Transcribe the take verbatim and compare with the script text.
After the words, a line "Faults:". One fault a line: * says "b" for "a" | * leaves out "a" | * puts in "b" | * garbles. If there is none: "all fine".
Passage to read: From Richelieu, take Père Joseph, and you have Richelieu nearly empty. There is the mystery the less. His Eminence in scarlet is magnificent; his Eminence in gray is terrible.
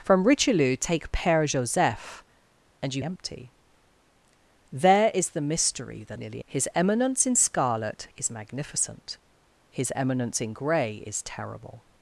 From Richelieu, take Père Joseph, and you empty. There is the mystery the nearly. His Eminence in scarlet is magnificent; his Eminence in gray is terrible.
Faults:
* leaves out "have Richelieu nearly"
* says "nearly" for "less"